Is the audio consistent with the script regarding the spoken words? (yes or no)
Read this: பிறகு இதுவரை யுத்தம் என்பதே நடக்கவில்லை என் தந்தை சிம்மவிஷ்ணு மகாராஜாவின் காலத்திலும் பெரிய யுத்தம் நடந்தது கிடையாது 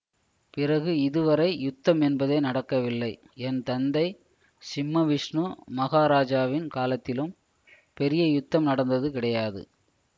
yes